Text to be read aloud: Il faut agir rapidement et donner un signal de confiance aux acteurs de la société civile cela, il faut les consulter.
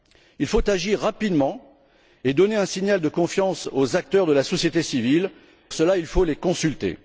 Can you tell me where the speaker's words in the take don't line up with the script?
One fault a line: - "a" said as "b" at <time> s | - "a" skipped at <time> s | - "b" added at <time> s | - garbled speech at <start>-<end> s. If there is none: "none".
none